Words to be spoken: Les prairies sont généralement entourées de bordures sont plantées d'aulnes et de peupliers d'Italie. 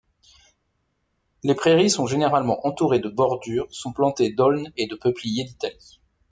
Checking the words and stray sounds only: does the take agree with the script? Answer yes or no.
yes